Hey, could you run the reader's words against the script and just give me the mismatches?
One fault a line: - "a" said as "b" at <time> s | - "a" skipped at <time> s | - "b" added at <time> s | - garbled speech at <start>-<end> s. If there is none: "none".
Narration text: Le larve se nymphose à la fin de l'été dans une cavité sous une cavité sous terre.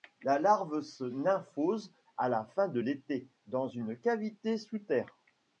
- "Le" said as "La" at 0.2 s
- "une cavité sous" skipped at 4.8 s